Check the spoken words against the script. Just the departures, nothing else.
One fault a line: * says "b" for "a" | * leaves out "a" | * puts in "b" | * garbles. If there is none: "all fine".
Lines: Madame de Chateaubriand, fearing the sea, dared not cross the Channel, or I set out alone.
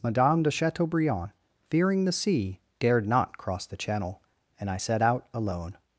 * says "and" for "or"